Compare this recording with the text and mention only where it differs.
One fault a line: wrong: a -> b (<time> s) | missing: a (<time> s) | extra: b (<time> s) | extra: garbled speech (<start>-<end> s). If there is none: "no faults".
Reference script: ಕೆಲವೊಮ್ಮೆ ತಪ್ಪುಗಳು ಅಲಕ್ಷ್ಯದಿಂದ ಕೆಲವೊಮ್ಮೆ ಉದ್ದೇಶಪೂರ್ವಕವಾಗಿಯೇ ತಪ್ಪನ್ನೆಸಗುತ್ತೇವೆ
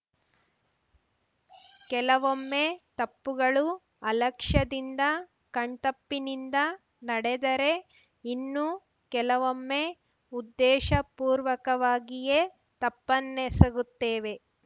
extra: ಕಣ್ತಪ್ಪಿನಿಂದ ನಡೆದರೆ ಇನ್ನು (5.5 s)